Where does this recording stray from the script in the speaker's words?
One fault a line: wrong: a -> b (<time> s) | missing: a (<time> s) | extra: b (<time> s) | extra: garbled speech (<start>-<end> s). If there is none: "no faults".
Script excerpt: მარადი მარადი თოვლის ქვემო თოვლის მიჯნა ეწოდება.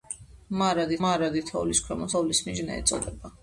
no faults